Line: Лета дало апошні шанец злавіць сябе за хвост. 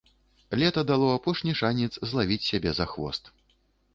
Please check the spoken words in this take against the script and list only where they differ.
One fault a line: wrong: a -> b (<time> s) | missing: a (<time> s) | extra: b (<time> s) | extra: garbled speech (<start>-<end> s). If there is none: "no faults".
no faults